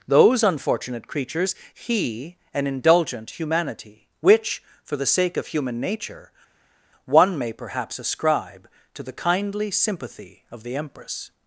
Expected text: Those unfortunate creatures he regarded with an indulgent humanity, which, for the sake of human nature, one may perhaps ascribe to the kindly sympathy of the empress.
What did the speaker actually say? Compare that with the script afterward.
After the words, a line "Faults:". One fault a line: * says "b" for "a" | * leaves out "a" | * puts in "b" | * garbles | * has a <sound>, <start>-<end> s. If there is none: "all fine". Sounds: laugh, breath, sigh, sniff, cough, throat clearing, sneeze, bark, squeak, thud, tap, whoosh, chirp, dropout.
Those unfortunate creatures he an indulgent humanity, which, for the sake of human nature, one may perhaps ascribe to the kindly sympathy of the empress.
Faults:
* leaves out "regarded with"